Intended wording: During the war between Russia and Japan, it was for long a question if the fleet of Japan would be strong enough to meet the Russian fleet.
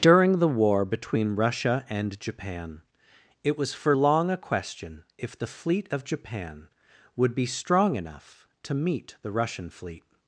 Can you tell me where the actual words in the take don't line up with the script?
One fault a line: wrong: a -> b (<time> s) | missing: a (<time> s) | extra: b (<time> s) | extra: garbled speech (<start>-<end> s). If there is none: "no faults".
no faults